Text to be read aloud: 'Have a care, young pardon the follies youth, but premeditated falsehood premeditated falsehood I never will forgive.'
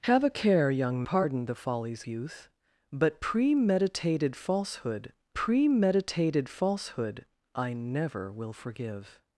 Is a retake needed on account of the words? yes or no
no